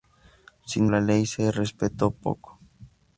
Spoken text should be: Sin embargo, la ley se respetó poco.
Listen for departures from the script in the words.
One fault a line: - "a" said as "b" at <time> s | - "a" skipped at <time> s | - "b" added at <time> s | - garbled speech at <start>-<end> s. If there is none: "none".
- "embargo" skipped at 0.9 s